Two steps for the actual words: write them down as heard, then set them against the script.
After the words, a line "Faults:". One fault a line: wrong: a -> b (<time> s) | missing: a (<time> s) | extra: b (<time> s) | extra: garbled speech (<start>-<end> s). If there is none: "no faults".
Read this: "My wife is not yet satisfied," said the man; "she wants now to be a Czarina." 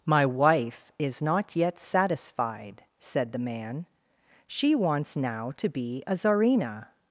"My wife is not yet satisfied," said the man; "she wants now to be a Czarina."
Faults:
no faults